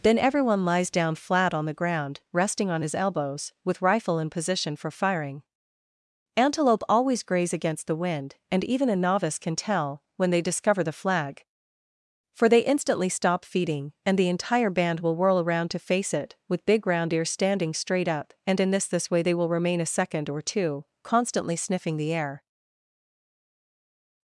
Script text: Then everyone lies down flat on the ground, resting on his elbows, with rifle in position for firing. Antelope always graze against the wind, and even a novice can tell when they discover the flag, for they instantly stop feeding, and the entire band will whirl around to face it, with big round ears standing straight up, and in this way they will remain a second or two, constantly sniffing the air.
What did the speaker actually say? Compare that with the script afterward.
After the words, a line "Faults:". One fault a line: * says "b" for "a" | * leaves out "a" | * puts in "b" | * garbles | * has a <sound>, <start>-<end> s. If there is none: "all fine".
Then everyone lies down flat on the ground, resting on his elbows, with rifle in position for firing. Antelope always graze against the wind, and even a novice can tell when they discover the flag, for they instantly stop feeding, and the entire band will whirl around to face it, with big round ears standing straight up, and in this this way they will remain a second or two, constantly sniffing the air.
Faults:
* puts in "this"